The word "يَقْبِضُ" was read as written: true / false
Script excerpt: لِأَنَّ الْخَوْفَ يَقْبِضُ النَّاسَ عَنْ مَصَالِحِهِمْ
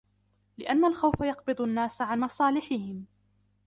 true